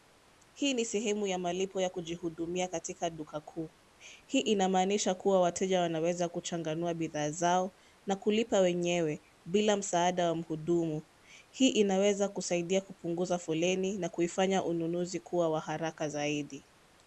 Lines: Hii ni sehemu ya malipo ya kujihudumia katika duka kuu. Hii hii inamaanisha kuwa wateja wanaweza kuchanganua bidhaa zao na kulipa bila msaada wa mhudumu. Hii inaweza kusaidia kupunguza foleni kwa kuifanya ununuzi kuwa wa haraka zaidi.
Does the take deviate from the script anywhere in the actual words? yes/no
yes